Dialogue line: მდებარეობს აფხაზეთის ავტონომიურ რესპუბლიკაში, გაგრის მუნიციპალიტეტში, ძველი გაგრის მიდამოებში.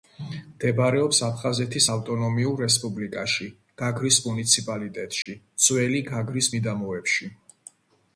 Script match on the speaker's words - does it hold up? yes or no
yes